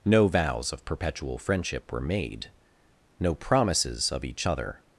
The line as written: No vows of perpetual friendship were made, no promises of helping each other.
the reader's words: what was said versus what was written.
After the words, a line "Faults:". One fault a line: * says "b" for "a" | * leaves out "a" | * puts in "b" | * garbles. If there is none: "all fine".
No vows of perpetual friendship were made, no promises of each other.
Faults:
* leaves out "helping"